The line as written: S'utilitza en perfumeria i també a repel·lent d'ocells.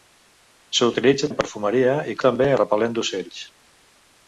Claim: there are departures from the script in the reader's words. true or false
false